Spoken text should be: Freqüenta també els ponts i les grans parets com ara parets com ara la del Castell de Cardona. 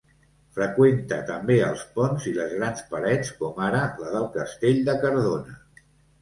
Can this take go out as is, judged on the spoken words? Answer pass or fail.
fail